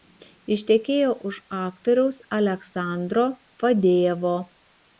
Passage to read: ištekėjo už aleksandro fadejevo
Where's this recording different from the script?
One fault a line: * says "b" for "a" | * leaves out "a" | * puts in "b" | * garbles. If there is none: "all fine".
* puts in "aktoriaus"